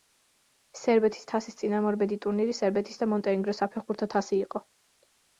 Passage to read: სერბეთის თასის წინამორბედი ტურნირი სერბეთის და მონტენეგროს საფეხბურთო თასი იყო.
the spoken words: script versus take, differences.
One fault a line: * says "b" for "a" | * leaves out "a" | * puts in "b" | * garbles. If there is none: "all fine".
all fine